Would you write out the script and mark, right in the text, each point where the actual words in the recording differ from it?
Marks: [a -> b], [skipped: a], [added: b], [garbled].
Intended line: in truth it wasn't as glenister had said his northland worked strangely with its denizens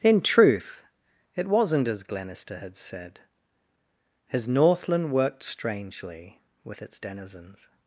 in truth it wasn't as glenister had said his northland worked strangely with its denizens